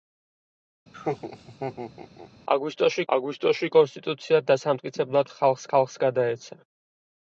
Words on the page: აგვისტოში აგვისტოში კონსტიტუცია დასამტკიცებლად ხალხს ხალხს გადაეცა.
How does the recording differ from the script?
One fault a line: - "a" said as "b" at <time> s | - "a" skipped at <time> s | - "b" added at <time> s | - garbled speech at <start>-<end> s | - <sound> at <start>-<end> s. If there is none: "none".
- laugh at 0.9-2.3 s